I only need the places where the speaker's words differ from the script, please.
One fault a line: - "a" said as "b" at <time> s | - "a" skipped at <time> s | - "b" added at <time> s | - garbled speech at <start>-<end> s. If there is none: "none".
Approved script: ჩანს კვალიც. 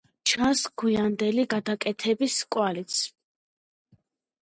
- "გვიანდელი გადაკეთების" added at 0.8 s